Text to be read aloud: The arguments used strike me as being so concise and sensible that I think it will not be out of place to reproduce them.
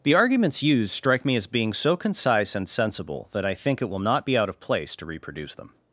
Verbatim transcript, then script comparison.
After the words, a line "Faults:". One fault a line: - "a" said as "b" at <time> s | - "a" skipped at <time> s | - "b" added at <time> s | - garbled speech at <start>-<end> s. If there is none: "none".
The arguments used strike me as being so concise and sensible that I think it will not be out of place to reproduce them.
Faults:
none